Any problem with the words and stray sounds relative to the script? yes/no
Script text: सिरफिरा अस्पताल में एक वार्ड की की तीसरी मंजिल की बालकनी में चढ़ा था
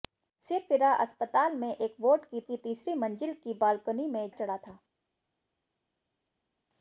no